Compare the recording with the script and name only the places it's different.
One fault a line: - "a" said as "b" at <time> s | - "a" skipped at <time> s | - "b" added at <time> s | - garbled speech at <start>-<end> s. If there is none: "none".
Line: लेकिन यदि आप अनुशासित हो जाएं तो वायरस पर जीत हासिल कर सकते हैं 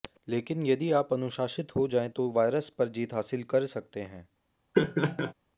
none